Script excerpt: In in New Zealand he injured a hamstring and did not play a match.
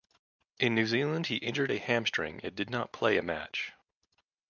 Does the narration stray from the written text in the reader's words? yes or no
yes